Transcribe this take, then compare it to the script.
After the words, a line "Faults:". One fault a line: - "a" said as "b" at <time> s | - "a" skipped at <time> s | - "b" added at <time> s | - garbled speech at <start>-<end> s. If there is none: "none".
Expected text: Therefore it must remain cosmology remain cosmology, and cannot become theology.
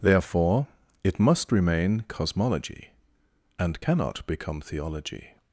Therefore it must remain cosmology, and cannot become theology.
Faults:
- "remain cosmology" skipped at 2.9 s